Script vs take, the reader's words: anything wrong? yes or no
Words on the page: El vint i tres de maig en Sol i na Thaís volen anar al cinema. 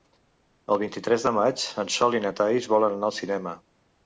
no